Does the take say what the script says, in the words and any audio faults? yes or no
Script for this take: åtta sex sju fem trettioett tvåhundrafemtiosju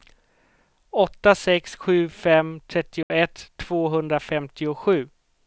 no